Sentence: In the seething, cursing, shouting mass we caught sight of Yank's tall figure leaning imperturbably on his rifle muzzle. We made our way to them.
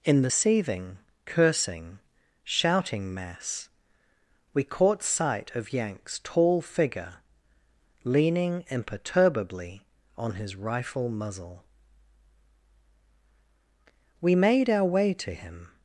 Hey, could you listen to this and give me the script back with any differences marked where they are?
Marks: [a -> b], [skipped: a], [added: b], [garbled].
In the seething, cursing, shouting mass we caught sight of Yank's tall figure leaning imperturbably on his rifle muzzle. We made our way to [them. -> him]